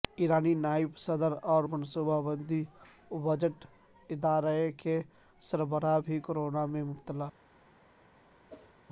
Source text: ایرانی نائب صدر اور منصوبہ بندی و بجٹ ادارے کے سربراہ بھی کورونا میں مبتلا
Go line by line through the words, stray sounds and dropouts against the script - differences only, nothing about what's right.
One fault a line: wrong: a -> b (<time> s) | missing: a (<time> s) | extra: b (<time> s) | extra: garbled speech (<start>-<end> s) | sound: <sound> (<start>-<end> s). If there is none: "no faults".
sound: whoosh (8.5-8.8 s)